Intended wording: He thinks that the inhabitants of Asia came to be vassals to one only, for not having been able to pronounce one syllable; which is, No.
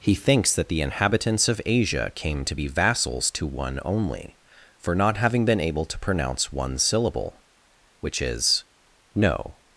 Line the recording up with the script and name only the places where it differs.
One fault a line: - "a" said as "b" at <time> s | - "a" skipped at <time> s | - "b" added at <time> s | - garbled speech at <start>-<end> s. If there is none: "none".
none